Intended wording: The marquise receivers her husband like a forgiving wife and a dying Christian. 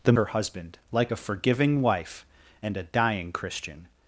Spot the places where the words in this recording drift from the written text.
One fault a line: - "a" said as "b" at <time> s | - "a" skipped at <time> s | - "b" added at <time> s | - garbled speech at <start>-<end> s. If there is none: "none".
- "marquise receivers" skipped at 0.1 s